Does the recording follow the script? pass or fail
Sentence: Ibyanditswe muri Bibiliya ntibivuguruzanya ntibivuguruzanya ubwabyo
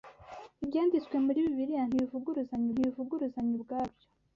pass